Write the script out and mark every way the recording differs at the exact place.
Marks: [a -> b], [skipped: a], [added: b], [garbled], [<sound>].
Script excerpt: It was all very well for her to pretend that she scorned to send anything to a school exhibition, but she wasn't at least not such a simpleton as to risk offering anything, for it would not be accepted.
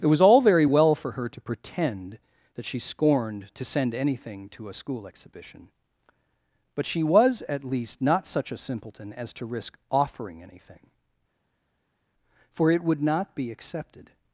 It was all very well for her to pretend that she scorned to send anything to a school exhibition, but she [wasn't -> was] at least not such a simpleton as to risk offering anything, for it would not be accepted.